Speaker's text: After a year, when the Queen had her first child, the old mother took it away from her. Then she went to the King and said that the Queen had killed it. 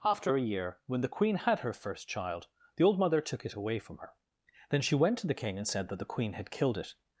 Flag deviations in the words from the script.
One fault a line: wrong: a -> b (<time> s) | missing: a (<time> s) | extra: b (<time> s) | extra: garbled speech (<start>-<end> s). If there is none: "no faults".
no faults